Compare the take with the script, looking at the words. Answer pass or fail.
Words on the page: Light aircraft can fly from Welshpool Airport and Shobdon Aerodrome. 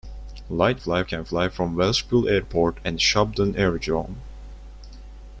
fail